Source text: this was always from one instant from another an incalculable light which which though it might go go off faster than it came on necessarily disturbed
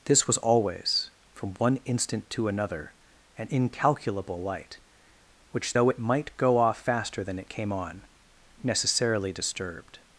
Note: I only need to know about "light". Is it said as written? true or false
true